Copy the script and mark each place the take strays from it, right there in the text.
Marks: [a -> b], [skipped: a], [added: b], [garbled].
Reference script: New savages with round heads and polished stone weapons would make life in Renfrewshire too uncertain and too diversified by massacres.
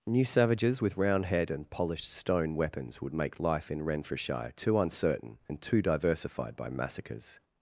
New savages with round [heads -> head] and polished stone weapons would make life in Renfrewshire too uncertain and too diversified by massacres.